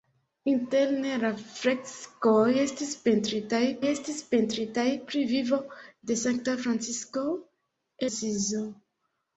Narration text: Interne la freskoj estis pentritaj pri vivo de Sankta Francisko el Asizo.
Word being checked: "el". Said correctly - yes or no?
no